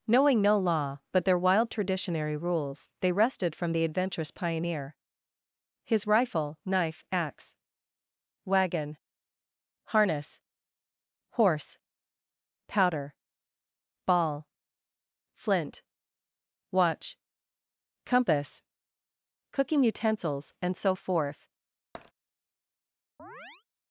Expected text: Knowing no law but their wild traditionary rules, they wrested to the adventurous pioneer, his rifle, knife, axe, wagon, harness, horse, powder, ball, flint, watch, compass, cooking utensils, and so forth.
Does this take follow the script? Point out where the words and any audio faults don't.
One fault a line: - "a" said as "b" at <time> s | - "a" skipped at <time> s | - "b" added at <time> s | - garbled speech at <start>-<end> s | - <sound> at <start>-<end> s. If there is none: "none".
- "to" said as "from" at 3.5 s
- tap at 21.9-22.1 s
- chirp at 23.2-23.6 s